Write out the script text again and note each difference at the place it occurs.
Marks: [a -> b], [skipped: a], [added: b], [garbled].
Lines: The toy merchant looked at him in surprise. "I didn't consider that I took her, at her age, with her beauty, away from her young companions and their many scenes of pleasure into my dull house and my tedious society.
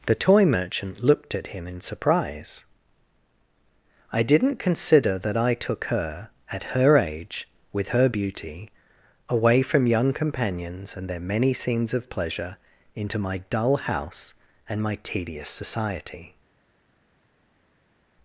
The toy merchant looked at him in surprise. "I didn't consider that I took her, at her age, with her beauty, away from [skipped: her] young companions and their many scenes of pleasure into my dull house and my tedious society.